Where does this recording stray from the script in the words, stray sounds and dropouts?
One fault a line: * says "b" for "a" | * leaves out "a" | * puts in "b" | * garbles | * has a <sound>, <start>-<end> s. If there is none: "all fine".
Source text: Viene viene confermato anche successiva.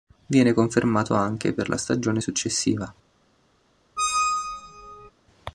* leaves out "viene"
* puts in "per la stagione"
* has a squeak, 4.0-5.1 s